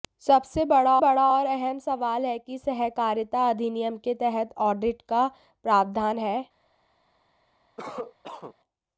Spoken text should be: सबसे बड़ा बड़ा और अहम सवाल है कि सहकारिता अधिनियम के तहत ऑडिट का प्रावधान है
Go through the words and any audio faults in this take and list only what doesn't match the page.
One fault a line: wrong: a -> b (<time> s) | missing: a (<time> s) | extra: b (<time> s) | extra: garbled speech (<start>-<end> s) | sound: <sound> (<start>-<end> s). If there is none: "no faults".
sound: cough (7.8-8.5 s)